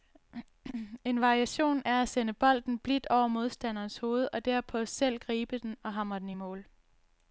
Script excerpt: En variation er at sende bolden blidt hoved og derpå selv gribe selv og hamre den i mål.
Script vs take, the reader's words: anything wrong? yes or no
yes